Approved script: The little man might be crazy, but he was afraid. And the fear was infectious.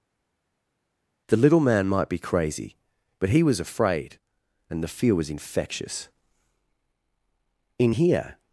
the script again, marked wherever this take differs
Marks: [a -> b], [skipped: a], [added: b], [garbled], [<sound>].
The little man might be crazy, but he was afraid. And the fear was infectious. [added: In here]